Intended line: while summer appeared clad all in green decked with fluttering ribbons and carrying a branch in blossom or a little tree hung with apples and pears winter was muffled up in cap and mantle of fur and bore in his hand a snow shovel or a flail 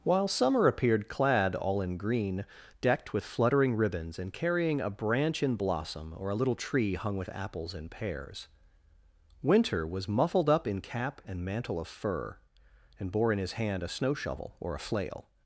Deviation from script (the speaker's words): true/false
false